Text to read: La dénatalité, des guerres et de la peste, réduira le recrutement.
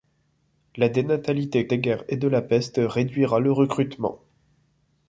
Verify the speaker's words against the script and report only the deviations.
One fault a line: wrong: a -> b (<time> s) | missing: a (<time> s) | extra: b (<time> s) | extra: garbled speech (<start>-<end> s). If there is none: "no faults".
no faults